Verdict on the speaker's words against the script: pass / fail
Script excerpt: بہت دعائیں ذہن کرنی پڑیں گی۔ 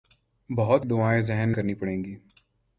pass